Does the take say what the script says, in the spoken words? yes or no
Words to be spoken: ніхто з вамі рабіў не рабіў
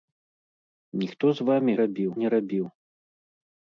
yes